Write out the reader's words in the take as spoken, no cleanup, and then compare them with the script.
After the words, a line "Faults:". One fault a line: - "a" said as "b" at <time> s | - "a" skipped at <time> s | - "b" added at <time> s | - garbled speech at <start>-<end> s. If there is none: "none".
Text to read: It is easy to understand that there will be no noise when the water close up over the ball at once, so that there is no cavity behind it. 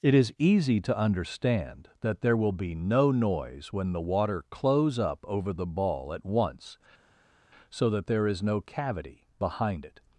It is easy to understand that there will be no noise when the water close up over the ball at once, so that there is no cavity behind it.
Faults:
none